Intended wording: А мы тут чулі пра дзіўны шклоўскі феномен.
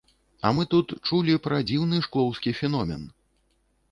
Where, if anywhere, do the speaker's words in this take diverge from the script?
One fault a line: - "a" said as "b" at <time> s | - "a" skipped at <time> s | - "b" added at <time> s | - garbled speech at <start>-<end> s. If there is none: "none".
none